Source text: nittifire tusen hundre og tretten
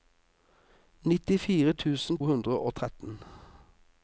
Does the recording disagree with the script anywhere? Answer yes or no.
no